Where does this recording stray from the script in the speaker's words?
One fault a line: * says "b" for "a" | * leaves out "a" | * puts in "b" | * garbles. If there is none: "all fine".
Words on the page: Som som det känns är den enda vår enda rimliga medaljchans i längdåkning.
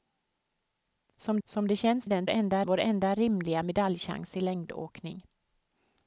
all fine